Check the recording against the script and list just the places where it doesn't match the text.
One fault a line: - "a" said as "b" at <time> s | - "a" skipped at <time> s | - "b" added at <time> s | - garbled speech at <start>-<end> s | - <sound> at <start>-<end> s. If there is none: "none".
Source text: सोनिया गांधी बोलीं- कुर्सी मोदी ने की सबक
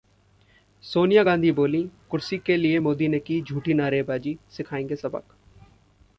- "के लिए" added at 2.4 s
- "झूठी नारेबाजी सिखाएंगे" added at 3.4 s